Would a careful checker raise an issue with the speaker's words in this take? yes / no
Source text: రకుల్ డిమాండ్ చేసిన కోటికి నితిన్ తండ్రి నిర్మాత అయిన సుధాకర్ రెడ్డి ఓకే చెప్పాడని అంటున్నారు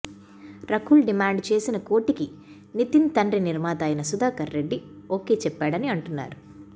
no